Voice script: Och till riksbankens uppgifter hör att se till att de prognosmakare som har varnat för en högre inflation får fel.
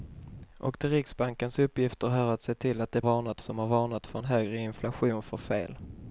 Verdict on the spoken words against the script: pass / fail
fail